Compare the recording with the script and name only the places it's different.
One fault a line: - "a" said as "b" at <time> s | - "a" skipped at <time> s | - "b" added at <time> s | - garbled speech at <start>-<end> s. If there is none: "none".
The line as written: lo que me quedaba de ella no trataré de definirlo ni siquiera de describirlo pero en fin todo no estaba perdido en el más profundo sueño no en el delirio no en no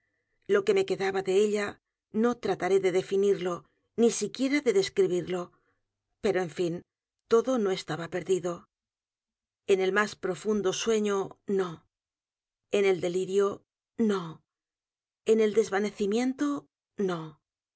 - "el desvanecimiento" added at 15.4 s